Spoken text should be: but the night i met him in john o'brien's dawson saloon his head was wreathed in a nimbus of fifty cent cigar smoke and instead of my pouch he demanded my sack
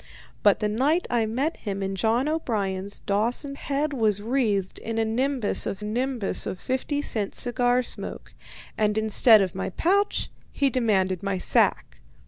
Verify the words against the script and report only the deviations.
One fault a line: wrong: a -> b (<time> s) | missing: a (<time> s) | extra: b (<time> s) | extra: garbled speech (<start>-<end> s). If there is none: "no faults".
missing: saloon his (3.5 s)
extra: nimbus of (5.8 s)